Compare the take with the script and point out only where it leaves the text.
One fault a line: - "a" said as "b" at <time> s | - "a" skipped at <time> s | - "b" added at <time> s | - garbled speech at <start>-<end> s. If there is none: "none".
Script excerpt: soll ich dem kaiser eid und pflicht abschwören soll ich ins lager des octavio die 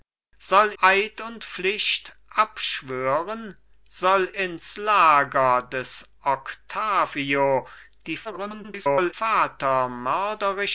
- "ich dem kaiser" skipped at 0.7 s
- "ich" skipped at 4.3 s
- garbled speech at 8.2-9.1 s